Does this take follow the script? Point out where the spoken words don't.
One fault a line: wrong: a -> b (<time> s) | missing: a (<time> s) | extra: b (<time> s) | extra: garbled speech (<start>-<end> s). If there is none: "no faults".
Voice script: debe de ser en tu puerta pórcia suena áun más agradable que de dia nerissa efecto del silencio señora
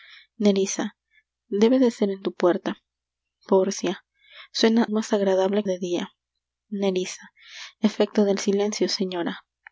missing: áun (4.8 s)
missing: que (5.6 s)